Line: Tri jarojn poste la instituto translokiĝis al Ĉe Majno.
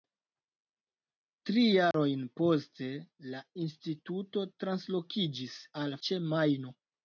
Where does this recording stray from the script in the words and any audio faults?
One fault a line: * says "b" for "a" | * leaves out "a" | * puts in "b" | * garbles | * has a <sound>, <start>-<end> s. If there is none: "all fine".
* has a dropout, 1.9-1.9 s